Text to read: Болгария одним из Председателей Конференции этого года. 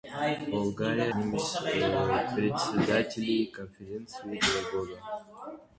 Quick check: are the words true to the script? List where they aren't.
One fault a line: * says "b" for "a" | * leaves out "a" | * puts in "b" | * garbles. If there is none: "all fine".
all fine